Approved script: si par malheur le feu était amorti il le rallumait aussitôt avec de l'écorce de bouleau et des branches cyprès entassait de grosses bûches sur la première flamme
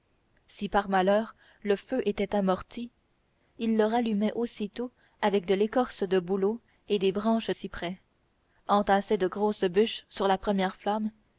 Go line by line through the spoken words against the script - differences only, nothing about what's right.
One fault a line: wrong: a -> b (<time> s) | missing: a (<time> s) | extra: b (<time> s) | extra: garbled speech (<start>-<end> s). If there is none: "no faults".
no faults